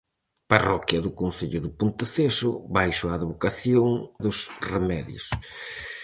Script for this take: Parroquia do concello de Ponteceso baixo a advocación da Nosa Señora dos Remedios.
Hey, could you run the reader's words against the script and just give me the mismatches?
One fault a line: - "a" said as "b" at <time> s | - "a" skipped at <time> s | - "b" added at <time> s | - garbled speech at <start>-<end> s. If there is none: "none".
- "da Nosa Señora" skipped at 3.9 s